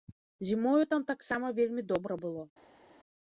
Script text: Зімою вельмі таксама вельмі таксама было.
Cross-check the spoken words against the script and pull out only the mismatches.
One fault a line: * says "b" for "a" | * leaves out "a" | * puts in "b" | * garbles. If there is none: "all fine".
* says "там" for "вельмі"
* says "добра" for "таксама"